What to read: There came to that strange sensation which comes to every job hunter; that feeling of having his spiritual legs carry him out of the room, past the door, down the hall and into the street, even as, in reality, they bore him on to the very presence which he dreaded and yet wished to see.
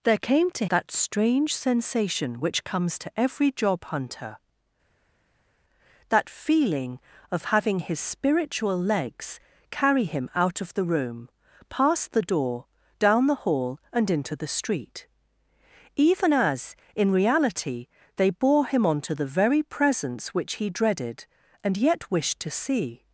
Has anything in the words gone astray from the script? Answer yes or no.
no